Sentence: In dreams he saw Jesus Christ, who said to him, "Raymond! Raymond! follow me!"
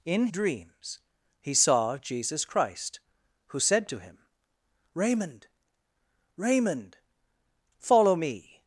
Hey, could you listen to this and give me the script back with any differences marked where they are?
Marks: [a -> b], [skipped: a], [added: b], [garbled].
In dreams he saw Jesus Christ, who said to him, "Raymond! Raymond! follow me!"